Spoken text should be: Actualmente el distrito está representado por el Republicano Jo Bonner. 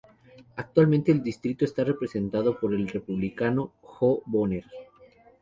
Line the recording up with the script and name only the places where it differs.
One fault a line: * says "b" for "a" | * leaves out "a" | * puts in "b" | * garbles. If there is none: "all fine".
all fine